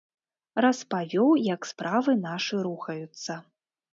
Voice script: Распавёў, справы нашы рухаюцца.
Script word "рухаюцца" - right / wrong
right